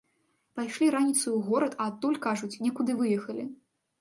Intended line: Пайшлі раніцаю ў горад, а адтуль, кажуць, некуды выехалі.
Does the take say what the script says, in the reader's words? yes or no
yes